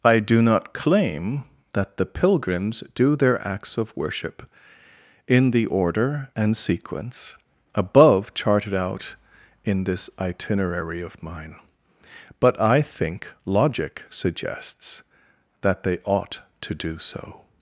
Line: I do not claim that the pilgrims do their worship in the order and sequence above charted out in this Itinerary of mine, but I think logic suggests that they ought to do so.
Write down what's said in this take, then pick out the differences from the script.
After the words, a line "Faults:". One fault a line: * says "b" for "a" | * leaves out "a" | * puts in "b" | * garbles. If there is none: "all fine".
I do not claim that the pilgrims do their acts of worship in the order and sequence above charted out in this Itinerary of mine, but I think logic suggests that they ought to do so.
Faults:
* puts in "acts of"